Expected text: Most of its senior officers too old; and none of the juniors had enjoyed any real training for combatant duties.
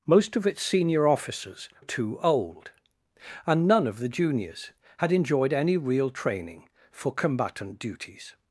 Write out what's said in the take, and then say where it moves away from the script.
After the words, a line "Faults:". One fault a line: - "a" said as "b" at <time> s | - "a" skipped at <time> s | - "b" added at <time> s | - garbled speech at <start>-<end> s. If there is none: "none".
Most of its senior officers too old; and none of the juniors had enjoyed any real training for combatant duties.
Faults:
none